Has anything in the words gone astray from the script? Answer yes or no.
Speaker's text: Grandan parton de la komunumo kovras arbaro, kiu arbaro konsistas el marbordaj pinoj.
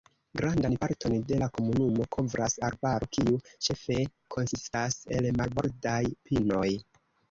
yes